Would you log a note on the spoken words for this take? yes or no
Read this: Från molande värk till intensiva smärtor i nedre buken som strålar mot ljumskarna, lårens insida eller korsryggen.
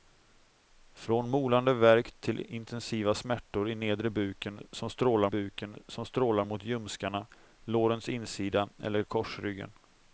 yes